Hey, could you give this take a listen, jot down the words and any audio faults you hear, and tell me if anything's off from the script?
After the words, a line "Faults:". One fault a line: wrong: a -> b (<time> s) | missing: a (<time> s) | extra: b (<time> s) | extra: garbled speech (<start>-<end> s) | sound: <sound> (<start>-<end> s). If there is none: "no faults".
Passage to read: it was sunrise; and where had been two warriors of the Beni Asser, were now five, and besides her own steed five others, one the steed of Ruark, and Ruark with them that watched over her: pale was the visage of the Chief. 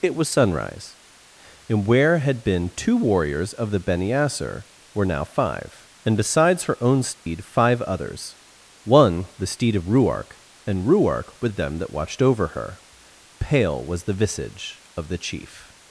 it was sunrise; and where had been two warriors of the Beni Asser, were now five, and besides her own steed five others, one the steed of Ruark, and Ruark with them that watched over her: pale was the visage of the Chief.
Faults:
sound: dropout (7.1-7.3 s)